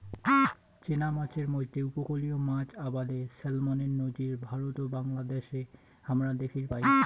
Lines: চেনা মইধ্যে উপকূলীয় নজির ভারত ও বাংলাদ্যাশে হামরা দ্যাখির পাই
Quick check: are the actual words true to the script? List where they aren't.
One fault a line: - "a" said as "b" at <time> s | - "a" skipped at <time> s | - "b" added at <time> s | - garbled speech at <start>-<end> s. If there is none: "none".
- "মাছের" added at 1.1 s
- "মাছ আবাদে স্যালমনের" added at 2.5 s